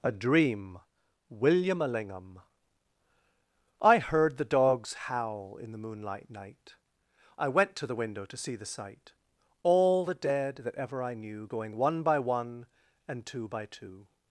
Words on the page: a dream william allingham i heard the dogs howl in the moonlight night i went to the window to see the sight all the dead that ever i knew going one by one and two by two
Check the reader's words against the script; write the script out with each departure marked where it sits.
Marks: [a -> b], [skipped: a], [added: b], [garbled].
a dream william allingham i heard the dogs howl in the moonlight night i went to the window to see the sight all the dead that ever i knew going one by one and two by two